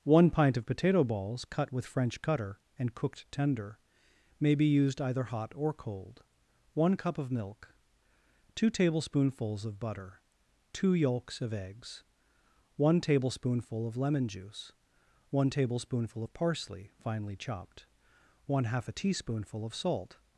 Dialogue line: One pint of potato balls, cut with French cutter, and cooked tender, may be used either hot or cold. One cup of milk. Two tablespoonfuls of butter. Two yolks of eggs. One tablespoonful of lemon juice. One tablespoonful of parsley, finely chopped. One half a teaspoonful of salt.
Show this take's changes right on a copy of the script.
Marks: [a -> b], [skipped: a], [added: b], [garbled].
One pint of potato balls, cut with French cutter, and cooked tender, may be used either hot or cold. One cup of milk. Two tablespoonfuls of butter. Two yolks of eggs. One tablespoonful of lemon juice. One tablespoonful of parsley, finely chopped. One half a teaspoonful of salt.